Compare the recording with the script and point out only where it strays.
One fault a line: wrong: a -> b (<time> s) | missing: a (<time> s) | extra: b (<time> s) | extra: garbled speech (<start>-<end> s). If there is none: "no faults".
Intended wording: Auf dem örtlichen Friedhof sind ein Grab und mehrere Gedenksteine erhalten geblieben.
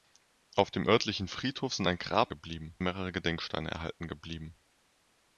wrong: und -> geblieben (2.3 s)